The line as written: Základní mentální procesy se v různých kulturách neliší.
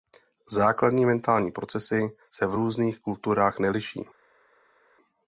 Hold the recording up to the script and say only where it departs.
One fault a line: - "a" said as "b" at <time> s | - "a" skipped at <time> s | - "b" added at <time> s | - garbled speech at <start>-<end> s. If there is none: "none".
none